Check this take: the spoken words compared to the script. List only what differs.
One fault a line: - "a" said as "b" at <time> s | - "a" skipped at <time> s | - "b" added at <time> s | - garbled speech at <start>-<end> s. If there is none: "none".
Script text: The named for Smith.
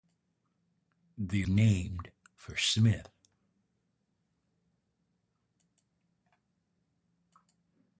none